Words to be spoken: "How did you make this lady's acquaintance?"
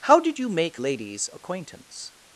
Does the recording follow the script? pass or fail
fail